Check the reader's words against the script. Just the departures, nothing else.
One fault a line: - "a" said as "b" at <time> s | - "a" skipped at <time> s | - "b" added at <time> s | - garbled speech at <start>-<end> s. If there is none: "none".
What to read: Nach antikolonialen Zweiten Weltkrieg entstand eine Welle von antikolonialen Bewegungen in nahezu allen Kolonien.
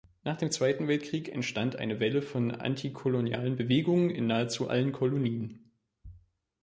- "antikolonialen" said as "dem" at 0.3 s